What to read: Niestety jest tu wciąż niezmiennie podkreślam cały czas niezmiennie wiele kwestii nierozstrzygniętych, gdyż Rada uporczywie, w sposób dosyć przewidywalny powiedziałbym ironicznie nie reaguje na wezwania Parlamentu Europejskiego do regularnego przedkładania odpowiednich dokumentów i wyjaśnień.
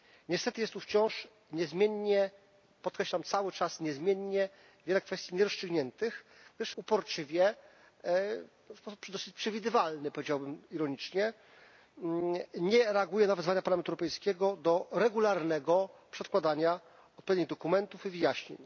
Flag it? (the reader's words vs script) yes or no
yes